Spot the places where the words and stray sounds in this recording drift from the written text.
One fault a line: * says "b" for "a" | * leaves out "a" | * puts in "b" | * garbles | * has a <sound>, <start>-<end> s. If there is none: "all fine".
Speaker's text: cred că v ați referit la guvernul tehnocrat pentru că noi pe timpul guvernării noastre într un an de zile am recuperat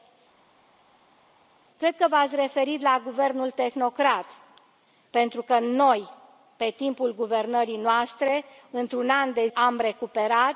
* leaves out "zile"